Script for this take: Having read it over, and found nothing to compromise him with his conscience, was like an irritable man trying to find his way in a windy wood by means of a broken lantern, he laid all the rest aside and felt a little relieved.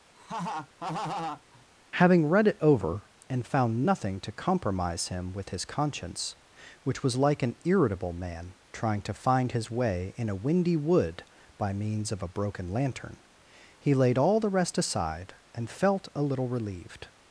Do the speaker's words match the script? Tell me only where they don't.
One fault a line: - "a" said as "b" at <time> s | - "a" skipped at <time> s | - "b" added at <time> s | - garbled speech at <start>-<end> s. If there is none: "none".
- "which" added at 6.8 s